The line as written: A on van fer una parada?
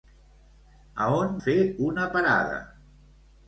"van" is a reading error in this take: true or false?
true